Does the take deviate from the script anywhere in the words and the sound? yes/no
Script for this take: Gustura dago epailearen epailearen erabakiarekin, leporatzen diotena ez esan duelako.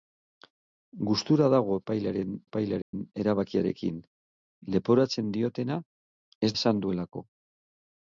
yes